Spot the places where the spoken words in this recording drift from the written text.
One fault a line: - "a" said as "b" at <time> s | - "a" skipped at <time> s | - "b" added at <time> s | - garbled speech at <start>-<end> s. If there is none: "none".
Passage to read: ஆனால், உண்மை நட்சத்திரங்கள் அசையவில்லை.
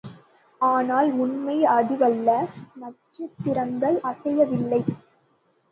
- "அதுவல்ல" added at 1.7 s